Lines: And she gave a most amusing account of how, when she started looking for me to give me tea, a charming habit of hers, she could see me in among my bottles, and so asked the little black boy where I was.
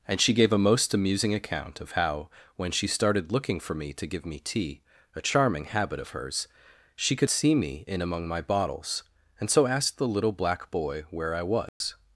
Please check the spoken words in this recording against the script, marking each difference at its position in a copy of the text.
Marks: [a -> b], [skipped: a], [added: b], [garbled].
And she gave a most amusing account of how, when she started looking for me to give me tea, a charming habit of hers, she could see me in among my bottles, and so asked the little black boy where I was.